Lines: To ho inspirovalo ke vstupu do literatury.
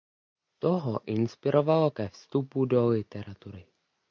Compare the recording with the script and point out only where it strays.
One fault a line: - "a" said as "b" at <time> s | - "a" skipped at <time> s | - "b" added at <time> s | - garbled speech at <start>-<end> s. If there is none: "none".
none